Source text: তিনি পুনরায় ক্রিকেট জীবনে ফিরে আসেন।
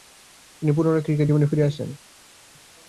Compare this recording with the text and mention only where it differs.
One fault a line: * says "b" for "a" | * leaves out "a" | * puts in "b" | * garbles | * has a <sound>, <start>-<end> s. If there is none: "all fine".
all fine